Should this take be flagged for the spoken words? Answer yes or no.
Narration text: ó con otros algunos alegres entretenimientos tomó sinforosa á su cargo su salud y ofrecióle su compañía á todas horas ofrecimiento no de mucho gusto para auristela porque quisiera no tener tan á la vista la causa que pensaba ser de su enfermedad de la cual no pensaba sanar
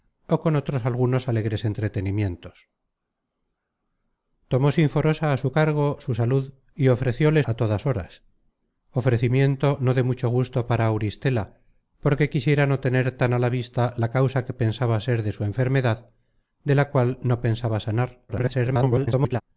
yes